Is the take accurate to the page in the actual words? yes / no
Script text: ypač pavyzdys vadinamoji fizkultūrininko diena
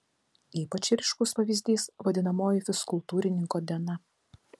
no